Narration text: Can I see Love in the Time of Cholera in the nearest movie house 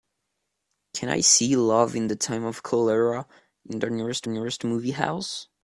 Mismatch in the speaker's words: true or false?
true